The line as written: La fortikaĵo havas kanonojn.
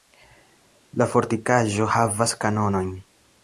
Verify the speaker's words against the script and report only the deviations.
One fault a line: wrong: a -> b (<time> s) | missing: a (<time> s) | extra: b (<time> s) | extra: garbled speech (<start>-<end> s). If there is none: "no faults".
no faults